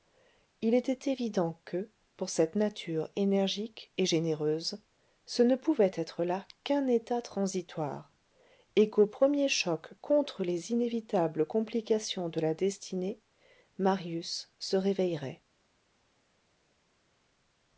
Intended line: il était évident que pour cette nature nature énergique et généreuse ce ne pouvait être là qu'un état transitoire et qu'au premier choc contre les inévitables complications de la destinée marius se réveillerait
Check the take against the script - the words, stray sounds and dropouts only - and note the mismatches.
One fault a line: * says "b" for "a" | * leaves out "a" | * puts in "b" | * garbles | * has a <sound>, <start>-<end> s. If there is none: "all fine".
* leaves out "nature"